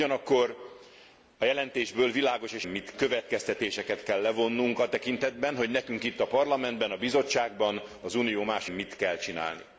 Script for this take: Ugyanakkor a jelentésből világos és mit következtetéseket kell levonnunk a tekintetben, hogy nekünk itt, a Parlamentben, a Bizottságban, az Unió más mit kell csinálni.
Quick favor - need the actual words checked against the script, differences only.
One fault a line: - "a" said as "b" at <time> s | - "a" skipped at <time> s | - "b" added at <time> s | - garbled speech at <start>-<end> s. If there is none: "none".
none